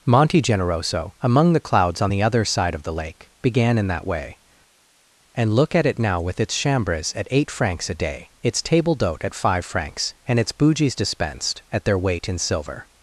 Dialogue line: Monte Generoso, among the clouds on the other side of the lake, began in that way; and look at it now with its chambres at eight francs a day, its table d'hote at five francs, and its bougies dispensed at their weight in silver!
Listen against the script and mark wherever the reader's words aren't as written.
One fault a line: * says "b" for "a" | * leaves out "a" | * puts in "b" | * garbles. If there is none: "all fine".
all fine